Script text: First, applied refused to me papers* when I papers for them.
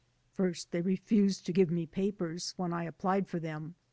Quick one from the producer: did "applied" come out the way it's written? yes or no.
no